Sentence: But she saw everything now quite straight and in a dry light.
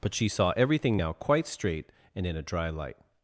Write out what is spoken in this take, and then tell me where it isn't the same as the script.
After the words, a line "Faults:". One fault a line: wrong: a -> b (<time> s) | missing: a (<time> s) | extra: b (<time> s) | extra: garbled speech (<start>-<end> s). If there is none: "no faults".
But she saw everything now quite straight and in a dry light.
Faults:
no faults